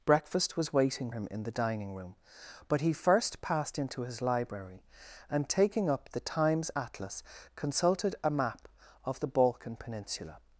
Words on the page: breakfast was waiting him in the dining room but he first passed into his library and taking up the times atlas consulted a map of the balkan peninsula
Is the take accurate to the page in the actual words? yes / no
yes